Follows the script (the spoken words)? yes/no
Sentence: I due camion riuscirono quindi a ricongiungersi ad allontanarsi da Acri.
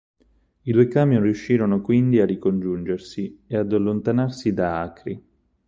no